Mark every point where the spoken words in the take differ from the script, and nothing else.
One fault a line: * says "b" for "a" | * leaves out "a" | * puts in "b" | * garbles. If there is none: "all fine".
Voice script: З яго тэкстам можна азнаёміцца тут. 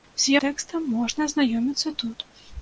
* leaves out "яго"